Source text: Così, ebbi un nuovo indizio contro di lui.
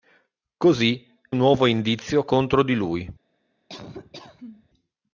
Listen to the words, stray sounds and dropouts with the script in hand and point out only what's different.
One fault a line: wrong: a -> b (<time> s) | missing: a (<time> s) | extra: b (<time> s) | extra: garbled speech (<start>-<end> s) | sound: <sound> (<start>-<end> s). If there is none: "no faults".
missing: ebbi (1.1 s)
sound: laugh (3.7-4.7 s)